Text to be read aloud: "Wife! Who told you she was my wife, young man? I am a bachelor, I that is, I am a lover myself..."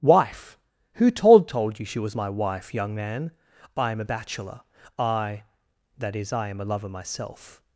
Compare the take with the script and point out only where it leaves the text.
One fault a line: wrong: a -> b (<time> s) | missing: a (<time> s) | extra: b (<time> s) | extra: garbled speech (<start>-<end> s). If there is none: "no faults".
extra: told (1.5 s)